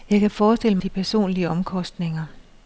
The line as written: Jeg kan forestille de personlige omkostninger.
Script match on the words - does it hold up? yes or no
yes